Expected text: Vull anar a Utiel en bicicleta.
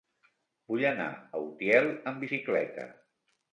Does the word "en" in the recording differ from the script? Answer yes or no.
yes